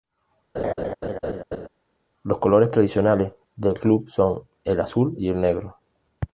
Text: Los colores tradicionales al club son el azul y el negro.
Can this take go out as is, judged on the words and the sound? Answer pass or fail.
fail